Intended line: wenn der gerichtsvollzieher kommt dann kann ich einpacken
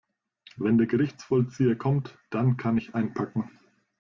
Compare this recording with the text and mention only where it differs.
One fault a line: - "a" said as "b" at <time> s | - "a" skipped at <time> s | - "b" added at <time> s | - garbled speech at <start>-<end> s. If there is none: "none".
none